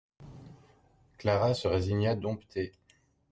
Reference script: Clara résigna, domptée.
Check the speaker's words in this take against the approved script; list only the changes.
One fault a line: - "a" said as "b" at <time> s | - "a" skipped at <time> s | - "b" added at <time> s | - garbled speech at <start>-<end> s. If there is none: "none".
- "se" added at 1.5 s